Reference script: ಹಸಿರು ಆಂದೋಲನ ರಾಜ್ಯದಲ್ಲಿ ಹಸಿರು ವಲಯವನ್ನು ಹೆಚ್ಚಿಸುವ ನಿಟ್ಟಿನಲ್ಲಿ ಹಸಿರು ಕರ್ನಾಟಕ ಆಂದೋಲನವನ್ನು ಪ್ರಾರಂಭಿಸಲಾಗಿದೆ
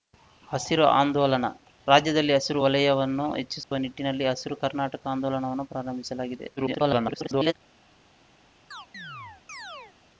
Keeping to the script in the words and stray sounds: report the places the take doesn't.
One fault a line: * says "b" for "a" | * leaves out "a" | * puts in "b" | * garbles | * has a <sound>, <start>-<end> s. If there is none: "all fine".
* has a dropout, 3.6-3.7 s
* garbles
* has a chirp, 8.7-10.0 s